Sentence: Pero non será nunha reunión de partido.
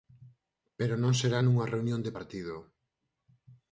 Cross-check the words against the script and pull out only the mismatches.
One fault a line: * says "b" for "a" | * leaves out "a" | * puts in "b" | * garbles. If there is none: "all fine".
all fine